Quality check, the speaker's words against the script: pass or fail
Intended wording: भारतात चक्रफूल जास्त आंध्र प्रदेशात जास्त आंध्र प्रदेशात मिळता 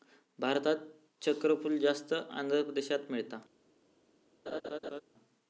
fail